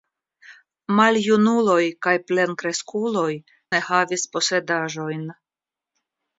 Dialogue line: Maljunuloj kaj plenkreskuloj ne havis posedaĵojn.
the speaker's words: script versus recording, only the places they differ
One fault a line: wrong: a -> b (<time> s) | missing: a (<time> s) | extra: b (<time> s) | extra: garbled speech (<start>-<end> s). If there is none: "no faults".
no faults